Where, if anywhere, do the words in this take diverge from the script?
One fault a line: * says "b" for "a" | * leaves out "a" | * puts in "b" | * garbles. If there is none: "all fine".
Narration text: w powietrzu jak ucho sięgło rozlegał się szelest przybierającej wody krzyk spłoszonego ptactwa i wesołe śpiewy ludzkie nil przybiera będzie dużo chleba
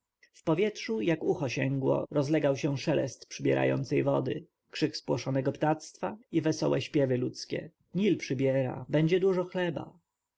all fine